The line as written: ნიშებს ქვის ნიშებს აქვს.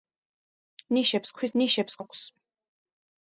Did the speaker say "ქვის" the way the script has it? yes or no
yes